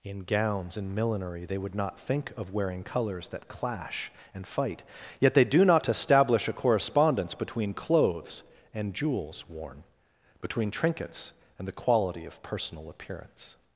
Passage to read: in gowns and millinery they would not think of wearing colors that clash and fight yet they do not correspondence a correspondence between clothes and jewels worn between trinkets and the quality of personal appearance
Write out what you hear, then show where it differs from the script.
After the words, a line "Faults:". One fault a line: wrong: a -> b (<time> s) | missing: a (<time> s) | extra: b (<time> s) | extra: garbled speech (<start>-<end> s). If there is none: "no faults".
in gowns and millinery they would not think of wearing colors that clash and fight yet they do not establish a correspondence between clothes and jewels worn between trinkets and the quality of personal appearance
Faults:
wrong: correspondence -> establish (5.9 s)